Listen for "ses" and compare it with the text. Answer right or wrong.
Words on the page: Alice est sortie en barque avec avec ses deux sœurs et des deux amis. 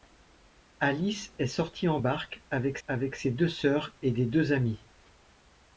right